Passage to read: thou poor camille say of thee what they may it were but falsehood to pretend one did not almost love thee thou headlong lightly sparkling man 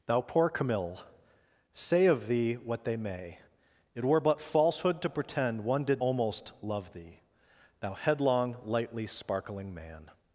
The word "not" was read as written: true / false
false